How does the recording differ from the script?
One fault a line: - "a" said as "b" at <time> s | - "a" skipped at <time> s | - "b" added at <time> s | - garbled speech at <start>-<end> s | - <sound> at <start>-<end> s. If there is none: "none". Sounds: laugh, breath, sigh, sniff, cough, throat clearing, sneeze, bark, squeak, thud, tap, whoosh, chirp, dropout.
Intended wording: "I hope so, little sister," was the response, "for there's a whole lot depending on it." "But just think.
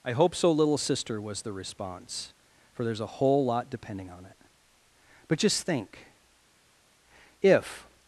- "If" added at 7.4 s